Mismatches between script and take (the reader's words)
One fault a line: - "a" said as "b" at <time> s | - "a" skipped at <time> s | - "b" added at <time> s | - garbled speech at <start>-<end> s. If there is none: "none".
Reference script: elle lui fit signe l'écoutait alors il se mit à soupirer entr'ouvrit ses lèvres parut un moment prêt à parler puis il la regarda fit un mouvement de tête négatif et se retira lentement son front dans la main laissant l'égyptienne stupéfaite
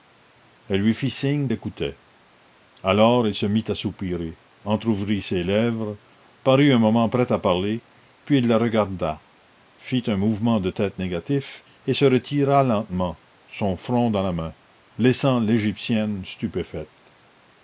none